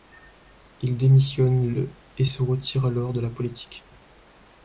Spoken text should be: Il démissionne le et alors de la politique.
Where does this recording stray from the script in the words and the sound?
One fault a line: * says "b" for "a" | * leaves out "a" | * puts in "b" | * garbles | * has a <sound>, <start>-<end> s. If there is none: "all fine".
* puts in "se retire"